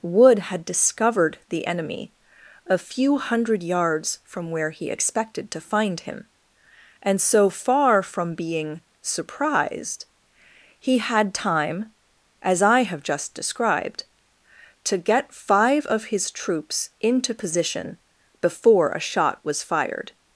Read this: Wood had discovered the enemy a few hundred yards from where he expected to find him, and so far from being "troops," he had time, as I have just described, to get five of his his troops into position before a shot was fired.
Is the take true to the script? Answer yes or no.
no